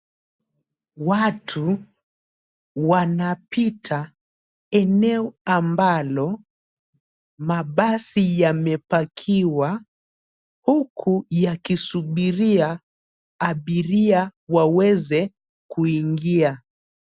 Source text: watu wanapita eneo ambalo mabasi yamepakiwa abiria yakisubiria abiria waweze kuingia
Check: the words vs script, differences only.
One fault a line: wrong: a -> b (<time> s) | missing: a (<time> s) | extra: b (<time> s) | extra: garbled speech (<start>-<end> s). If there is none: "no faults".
wrong: abiria -> huku (10.7 s)